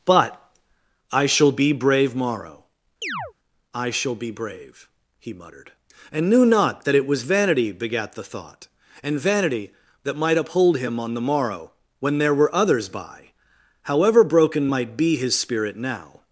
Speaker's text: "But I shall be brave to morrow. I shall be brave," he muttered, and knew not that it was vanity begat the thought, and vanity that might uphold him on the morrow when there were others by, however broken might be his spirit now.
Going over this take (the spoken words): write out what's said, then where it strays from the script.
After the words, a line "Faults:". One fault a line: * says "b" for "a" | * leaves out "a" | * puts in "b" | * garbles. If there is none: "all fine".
"But I shall be brave morrow. I shall be brave," he muttered, and knew not that it was vanity begat the thought, and vanity that might uphold him on the morrow when there were others by, however broken might be his spirit now.
Faults:
* leaves out "to"